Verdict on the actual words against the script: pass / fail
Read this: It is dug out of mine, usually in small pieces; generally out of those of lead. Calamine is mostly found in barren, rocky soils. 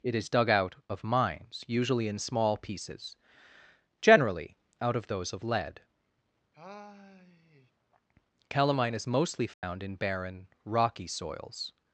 fail